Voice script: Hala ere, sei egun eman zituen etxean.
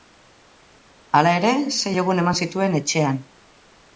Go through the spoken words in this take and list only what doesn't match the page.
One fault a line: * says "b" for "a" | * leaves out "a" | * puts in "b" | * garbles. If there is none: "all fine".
all fine